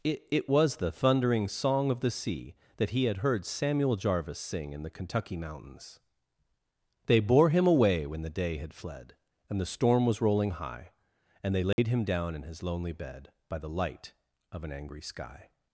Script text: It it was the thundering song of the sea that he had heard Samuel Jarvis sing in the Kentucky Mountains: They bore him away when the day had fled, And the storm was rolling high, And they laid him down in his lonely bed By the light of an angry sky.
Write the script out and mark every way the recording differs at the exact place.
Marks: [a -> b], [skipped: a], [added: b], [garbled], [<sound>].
It it was the thundering song of the sea that he had heard Samuel Jarvis sing in the Kentucky Mountains: They bore him away when the day had fled, And the storm was rolling high, And they laid [dropout] him down in his lonely bed By the light of an angry sky.